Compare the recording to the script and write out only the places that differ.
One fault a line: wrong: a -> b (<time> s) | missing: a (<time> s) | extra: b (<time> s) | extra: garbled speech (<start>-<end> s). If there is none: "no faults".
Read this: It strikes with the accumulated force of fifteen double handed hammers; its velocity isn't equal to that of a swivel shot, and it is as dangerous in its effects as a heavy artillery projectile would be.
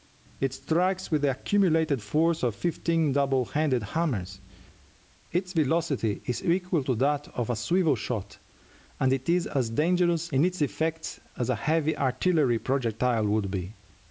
wrong: isn't -> is (6.2 s)